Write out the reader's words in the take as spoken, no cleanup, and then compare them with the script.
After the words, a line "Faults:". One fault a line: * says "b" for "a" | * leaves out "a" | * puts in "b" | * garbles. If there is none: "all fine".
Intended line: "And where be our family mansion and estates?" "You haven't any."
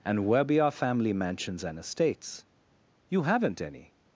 "And where be our family mansions and estates?" "You haven't any."
Faults:
* says "mansions" for "mansion"